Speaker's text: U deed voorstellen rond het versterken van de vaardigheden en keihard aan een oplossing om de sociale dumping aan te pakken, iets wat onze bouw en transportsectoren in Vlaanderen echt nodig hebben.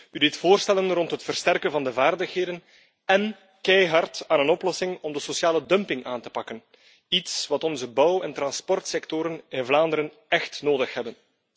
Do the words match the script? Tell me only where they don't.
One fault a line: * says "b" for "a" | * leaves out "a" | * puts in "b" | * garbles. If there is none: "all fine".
all fine